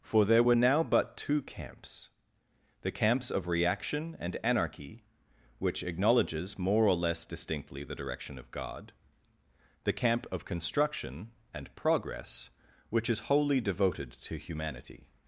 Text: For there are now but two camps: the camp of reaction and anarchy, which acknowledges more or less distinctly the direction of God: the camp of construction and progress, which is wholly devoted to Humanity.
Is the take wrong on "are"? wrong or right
wrong